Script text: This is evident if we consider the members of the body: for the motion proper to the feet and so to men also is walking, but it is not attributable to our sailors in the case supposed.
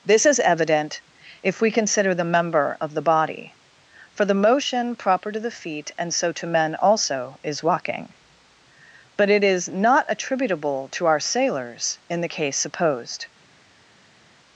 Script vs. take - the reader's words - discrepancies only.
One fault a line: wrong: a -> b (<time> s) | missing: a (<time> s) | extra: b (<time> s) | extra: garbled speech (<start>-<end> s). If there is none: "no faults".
wrong: members -> member (2.2 s)